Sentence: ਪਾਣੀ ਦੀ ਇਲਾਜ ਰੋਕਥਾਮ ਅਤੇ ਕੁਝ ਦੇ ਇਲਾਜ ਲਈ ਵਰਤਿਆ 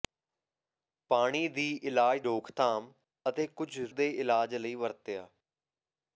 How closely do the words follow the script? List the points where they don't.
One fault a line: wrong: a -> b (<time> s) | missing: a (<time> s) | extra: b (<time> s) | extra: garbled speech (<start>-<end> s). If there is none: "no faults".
no faults